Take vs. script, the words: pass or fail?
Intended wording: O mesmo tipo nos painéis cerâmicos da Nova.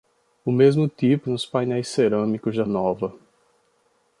pass